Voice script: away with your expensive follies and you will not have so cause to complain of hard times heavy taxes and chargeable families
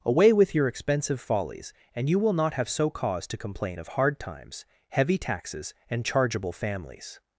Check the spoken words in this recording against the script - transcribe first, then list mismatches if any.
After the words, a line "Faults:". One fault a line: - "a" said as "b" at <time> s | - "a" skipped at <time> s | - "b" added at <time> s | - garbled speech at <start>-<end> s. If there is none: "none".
away with your expensive follies and you will not have so cause to complain of hard times heavy taxes and chargeable families
Faults:
none